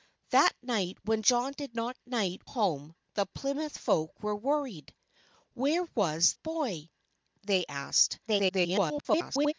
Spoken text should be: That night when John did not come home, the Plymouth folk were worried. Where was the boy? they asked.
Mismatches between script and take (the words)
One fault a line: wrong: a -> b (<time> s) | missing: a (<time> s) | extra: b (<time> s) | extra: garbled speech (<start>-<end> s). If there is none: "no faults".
wrong: come -> night (2.1 s)
missing: the (6.3 s)
extra: garbled speech (8.3-9.5 s)